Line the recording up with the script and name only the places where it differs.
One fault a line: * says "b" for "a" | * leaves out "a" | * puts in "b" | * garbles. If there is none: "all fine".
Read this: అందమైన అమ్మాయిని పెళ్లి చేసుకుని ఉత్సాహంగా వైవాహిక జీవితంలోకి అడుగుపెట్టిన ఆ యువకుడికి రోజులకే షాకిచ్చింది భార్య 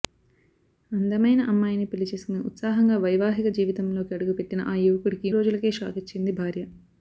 all fine